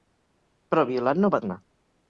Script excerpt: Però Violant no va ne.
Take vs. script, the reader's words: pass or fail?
pass